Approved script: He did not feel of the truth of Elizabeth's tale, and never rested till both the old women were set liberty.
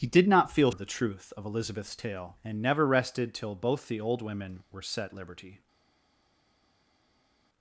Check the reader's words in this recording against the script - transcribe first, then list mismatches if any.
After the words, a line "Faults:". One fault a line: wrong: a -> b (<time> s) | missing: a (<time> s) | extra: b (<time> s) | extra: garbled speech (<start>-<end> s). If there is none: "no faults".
He did not feel of the truth of Elizabeth's tale, and never rested till both the old women were set liberty.
Faults:
no faults